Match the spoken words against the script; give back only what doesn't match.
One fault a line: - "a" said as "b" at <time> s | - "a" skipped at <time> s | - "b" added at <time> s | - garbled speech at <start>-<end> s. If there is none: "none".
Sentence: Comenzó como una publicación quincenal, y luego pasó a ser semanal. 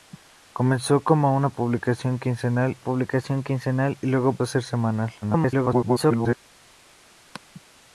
- "publicación quincenal" added at 2.8 s
- "pasó" skipped at 4.4 s
- garbled speech at 5.2-6.4 s